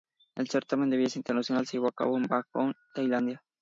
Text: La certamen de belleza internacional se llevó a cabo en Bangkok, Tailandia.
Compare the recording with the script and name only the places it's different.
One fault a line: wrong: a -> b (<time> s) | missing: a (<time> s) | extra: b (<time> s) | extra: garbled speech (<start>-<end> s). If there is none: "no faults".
wrong: La -> El (0.3 s)